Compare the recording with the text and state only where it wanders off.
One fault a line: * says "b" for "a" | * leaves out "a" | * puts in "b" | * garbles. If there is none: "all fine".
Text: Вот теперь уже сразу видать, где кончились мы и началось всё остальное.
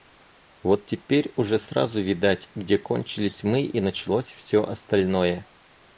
all fine